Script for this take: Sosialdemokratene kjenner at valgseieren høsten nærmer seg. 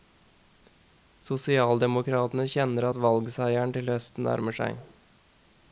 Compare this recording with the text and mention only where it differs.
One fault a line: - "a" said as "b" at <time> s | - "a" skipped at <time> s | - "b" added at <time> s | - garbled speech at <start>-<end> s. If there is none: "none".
- "til" added at 3.7 s